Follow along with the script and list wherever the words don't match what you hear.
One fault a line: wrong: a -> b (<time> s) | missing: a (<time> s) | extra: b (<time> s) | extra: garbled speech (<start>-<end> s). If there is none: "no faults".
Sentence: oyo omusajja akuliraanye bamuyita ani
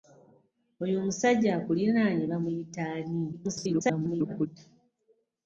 extra: garbled speech (3.3-4.5 s)